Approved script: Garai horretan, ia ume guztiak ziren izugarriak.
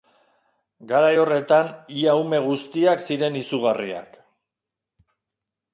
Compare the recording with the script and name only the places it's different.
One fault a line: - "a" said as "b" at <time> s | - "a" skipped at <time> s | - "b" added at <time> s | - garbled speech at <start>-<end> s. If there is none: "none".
none